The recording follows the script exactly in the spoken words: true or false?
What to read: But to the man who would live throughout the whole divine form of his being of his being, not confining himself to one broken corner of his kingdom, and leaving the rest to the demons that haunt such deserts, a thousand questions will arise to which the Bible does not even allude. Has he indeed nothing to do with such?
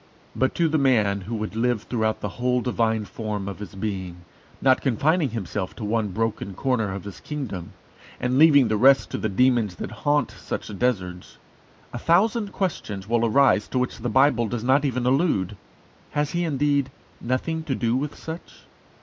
false